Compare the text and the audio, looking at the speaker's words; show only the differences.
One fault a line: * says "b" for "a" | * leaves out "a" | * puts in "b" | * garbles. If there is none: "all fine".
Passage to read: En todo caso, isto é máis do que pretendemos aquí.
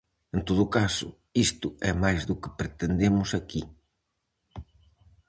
all fine